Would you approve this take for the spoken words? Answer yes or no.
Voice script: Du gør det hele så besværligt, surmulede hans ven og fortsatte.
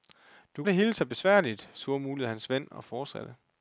no